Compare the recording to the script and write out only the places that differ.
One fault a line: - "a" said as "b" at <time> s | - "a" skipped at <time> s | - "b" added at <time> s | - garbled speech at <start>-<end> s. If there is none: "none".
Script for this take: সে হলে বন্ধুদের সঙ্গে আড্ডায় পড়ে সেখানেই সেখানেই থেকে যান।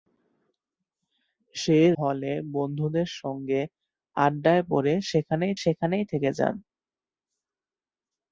none